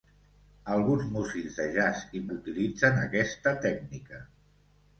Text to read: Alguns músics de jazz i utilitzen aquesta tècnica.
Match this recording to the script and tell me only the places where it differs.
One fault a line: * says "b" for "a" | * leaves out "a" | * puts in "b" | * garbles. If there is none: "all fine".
all fine